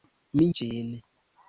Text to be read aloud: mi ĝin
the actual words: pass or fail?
pass